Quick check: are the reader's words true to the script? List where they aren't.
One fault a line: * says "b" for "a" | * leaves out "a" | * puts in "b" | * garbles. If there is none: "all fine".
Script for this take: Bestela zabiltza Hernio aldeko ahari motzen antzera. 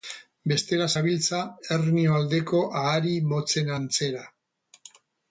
all fine